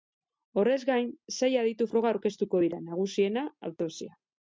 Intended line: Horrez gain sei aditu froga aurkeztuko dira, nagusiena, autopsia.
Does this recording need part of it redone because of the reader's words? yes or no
no